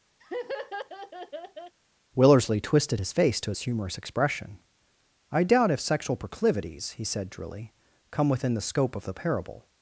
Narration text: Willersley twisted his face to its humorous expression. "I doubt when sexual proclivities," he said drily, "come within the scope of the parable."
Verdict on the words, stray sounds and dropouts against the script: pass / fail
fail